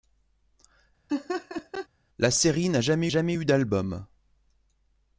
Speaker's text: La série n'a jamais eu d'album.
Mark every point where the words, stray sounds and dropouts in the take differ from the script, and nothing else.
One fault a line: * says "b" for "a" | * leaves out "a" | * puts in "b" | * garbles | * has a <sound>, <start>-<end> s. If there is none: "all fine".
* has a laugh, 1.1-1.9 s
* puts in "jamais"